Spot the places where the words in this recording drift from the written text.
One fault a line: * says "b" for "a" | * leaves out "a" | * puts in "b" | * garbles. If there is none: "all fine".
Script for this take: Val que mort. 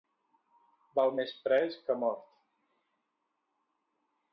* puts in "més pres"